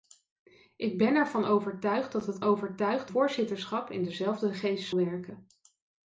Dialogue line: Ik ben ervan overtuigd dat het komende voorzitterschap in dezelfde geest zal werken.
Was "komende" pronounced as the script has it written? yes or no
no